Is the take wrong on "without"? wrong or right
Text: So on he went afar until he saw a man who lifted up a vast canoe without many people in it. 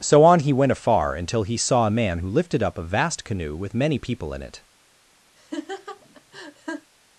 wrong